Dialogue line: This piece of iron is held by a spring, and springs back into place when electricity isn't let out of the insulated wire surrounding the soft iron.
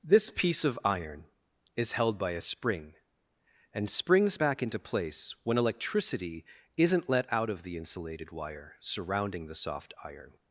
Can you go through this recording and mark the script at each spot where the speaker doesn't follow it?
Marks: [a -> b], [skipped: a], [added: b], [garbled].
This piece of iron is held by a spring, and springs back into place when electricity isn't let out of the insulated wire surrounding the soft iron.